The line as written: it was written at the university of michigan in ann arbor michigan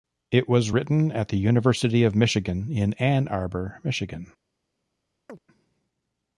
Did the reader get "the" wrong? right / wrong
right